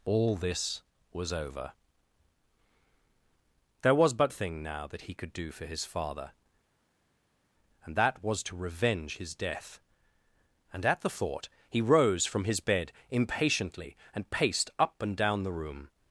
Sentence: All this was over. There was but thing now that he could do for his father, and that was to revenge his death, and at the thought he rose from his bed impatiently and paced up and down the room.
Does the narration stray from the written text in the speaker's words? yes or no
no